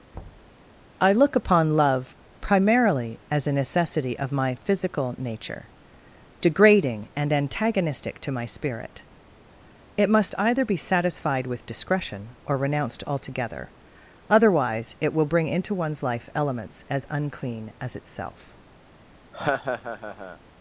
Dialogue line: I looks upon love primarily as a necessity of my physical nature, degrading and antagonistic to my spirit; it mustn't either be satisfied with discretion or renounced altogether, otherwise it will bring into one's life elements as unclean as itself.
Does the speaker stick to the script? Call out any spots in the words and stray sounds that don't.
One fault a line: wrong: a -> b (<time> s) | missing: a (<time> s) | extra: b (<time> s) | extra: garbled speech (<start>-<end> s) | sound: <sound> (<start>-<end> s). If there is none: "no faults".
sound: thud (0.1-0.6 s)
wrong: looks -> look (1.1 s)
wrong: mustn't -> must (10.1 s)
sound: laugh (19.3-20.4 s)